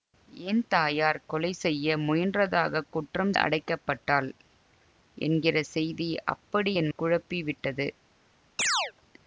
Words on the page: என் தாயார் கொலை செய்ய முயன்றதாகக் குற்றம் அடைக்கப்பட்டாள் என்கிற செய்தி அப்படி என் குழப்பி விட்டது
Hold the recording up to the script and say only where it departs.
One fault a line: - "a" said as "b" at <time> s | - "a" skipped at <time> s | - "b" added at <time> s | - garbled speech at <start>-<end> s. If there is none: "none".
none